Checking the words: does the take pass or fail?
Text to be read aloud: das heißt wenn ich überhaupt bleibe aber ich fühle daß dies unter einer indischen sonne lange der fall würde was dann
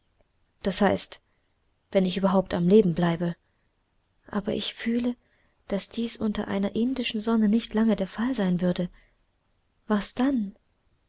fail